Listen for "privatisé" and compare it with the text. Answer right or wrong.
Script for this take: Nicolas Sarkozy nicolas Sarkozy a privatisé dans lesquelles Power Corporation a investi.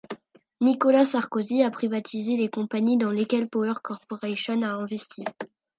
wrong